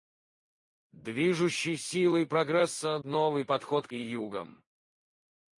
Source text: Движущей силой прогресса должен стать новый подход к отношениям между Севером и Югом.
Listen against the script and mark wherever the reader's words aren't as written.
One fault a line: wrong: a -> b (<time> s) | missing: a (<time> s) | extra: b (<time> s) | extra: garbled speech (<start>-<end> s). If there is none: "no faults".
missing: должен стать (3.0 s)
missing: отношениям между Севером (3.9 s)